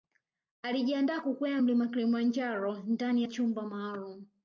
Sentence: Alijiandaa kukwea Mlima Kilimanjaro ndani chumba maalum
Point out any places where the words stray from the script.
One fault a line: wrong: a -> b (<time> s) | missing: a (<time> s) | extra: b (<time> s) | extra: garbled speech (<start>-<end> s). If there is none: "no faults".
no faults